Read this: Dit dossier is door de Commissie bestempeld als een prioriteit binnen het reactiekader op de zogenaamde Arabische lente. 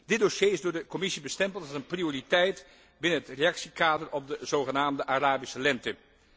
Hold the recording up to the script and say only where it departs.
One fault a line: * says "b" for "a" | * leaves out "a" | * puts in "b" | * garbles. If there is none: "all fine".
all fine